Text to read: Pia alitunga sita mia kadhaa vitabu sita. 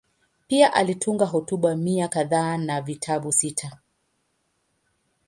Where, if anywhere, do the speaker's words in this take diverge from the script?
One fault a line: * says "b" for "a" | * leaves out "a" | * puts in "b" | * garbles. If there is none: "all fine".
* says "hotuba" for "sita"
* puts in "na"